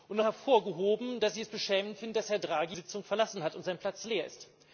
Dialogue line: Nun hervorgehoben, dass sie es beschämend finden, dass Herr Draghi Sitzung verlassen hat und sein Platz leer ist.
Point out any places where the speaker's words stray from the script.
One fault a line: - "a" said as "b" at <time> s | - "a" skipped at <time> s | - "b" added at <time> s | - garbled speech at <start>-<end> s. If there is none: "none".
none